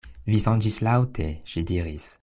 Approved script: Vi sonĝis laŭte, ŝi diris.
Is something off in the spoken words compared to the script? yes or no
no